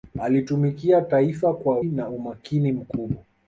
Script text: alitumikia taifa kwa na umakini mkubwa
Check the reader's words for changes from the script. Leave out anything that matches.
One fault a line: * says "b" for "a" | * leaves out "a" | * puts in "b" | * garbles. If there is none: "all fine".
all fine